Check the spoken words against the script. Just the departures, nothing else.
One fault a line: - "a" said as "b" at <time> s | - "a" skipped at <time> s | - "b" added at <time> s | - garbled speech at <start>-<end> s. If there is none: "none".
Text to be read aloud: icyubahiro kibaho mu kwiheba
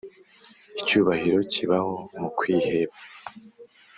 none